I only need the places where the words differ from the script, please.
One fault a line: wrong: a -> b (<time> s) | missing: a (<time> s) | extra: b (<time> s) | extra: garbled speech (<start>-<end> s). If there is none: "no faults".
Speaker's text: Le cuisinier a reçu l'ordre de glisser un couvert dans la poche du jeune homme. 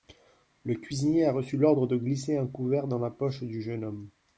no faults